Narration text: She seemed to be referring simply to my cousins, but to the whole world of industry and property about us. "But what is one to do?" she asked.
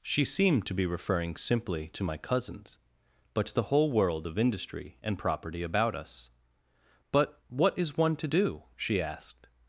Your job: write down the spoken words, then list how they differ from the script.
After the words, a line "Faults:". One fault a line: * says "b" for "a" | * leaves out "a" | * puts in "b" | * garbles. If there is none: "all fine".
She seemed to be referring simply to my cousins, but to the whole world of industry and property about us. "But what is one to do?" she asked.
Faults:
all fine